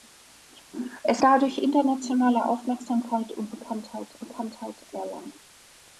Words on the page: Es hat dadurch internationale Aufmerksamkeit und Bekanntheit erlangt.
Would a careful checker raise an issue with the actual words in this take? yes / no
yes